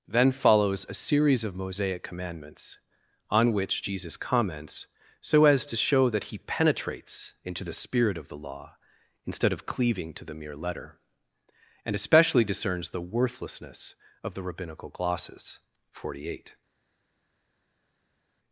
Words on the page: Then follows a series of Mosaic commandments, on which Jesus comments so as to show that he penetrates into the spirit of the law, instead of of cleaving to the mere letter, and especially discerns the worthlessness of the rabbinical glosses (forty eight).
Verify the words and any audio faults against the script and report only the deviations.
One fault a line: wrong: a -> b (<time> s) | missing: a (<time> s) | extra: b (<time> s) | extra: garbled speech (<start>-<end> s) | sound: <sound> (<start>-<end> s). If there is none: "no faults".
missing: of (9.7 s)